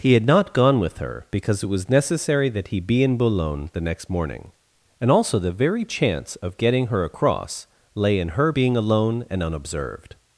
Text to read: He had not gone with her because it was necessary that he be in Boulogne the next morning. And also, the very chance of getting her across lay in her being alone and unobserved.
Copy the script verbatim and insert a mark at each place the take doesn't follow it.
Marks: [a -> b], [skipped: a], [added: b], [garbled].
He had not gone with her because it was necessary that he be in Boulogne the next morning. And also, the very chance of getting her across lay in her being alone and unobserved.